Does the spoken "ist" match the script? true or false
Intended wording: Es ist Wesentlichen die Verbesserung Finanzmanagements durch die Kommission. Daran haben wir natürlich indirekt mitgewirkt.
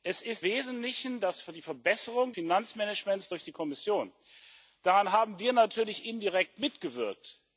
true